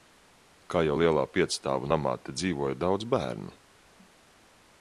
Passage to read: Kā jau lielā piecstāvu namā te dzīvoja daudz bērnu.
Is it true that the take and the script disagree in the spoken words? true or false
false